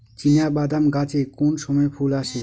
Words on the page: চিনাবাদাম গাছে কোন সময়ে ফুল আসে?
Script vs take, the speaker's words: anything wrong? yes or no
no